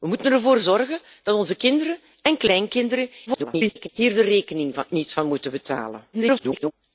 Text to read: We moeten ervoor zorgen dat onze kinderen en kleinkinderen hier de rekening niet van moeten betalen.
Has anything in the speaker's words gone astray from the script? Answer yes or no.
yes